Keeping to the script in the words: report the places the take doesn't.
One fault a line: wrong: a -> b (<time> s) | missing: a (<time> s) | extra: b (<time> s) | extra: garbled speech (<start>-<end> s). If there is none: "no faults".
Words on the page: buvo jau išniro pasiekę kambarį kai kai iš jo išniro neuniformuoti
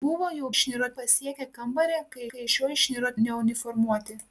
no faults